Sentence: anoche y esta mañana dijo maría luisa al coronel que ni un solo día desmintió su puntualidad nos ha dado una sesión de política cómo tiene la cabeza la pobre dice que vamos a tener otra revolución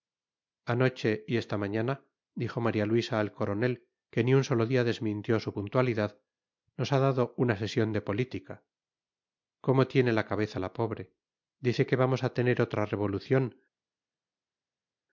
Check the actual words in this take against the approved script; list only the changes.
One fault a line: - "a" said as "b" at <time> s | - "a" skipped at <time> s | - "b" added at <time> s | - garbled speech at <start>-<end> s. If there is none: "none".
none